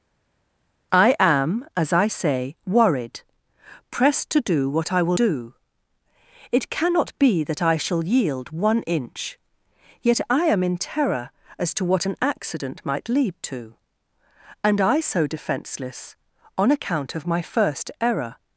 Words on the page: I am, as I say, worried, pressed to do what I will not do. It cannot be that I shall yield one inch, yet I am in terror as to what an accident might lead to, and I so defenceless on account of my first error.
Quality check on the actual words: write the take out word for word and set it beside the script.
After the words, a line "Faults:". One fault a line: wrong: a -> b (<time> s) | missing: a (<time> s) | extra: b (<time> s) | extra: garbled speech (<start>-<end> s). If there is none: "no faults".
I am, as I say, worried, pressed to do what I will do. It cannot be that I shall yield one inch, yet I am in terror as to what an accident might lead to, and I so defenceless on account of my first error.
Faults:
missing: not (5.2 s)